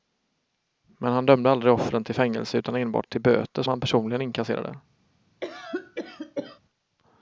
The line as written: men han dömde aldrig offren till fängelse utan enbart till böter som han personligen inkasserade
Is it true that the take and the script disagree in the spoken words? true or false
true